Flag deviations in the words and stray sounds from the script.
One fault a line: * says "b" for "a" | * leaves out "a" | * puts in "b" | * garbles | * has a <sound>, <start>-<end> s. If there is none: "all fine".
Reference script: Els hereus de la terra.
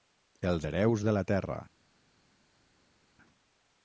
all fine